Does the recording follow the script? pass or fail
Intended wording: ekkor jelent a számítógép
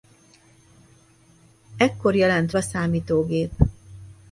pass